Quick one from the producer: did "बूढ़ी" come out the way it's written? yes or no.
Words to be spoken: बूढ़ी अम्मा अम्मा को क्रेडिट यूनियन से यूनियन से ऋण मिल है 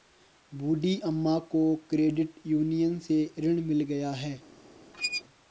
yes